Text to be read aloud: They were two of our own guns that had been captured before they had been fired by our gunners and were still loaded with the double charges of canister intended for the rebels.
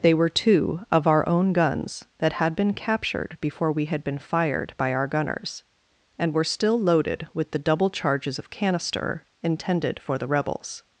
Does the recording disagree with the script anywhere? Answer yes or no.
yes